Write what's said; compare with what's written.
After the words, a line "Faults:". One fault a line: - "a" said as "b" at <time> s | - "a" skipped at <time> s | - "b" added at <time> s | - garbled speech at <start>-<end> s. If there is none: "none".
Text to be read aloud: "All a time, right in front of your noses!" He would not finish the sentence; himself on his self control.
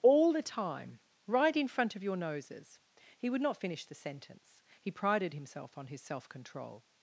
"All the time, right in front of your noses!" He would not finish the sentence; he prided himself on his self control.
Faults:
- "a" said as "the" at 0.3 s
- "he prided" added at 4.8 s